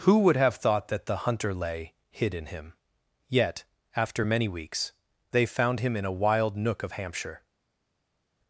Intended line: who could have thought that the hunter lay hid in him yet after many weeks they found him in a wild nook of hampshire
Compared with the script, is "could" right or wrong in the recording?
wrong